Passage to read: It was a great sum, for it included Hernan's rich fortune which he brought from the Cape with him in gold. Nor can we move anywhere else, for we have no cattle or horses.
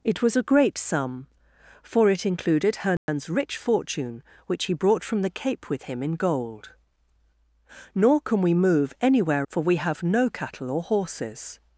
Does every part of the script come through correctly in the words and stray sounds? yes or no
no